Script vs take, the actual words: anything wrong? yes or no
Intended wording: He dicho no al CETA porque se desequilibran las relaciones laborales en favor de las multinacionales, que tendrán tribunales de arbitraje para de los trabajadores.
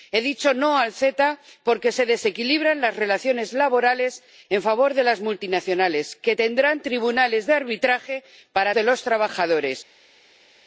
no